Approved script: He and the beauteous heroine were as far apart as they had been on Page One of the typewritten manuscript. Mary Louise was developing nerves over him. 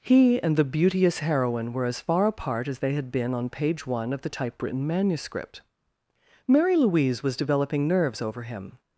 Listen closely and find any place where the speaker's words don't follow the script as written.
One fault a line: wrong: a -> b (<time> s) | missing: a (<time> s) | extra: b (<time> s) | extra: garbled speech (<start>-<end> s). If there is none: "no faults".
no faults